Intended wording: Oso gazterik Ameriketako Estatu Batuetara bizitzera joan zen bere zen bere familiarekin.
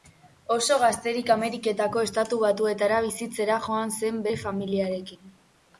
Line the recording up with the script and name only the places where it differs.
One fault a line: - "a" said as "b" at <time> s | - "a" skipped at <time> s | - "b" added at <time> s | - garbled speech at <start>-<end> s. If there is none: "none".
- "zen bere" skipped at 4.4 s